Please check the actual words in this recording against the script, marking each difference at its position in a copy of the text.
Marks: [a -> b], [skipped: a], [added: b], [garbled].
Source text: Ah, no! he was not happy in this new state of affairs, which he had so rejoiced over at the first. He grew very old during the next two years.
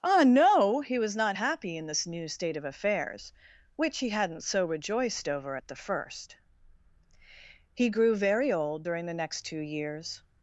Ah, no! he was not happy in this new state of affairs, which he [had -> hadn't] so rejoiced over at the first. He grew very old during the next two years.